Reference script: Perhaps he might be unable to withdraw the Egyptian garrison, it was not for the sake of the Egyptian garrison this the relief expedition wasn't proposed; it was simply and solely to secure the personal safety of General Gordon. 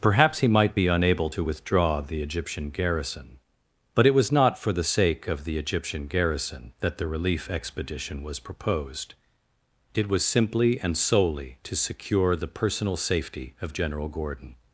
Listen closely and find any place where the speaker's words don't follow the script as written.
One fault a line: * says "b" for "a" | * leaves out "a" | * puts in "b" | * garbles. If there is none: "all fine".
* puts in "but"
* says "that" for "this"
* says "was" for "wasn't"